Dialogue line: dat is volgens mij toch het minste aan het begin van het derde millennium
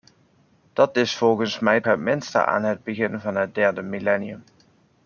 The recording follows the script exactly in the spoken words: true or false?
false